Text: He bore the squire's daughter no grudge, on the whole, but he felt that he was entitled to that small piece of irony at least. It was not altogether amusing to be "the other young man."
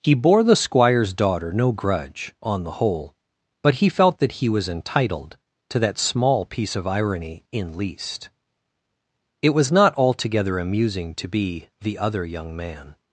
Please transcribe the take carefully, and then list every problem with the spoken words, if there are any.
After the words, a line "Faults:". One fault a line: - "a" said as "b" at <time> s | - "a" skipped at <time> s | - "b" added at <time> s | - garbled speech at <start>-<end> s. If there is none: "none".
He bore the squire's daughter no grudge, on the whole, but he felt that he was entitled to that small piece of irony in least. It was not altogether amusing to be "the other young man."
Faults:
- "at" said as "in" at 7.5 s